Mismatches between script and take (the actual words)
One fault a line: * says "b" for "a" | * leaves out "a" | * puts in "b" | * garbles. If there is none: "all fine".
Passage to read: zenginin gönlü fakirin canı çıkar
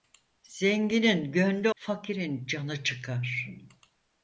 all fine